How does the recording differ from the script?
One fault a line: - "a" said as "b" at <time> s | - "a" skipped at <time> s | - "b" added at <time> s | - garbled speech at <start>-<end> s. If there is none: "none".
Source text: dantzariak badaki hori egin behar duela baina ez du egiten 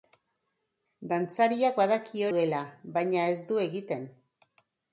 - "hori egin behar" skipped at 2.2 s